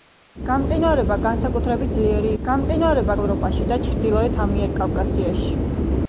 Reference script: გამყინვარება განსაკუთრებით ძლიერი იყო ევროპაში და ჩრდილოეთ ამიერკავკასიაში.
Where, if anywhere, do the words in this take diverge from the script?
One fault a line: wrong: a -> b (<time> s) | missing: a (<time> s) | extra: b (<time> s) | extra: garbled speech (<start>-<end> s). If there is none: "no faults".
wrong: იყო -> გამყინვარება (2.4 s)